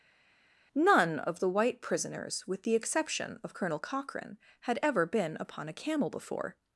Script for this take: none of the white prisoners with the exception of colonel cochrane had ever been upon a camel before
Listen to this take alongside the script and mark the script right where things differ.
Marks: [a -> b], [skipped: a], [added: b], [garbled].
none of the white prisoners with the exception of colonel cochrane had ever been upon a camel before